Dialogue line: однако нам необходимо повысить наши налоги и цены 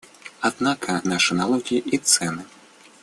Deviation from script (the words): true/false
true